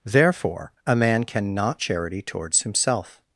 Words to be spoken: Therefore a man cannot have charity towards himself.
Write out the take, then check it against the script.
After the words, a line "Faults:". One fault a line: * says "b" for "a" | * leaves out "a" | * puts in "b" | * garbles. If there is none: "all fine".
Therefore a man cannot charity towards himself.
Faults:
* leaves out "have"